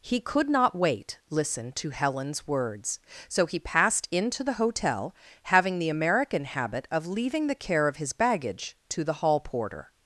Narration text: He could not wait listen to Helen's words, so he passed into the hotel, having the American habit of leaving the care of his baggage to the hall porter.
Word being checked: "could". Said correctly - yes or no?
yes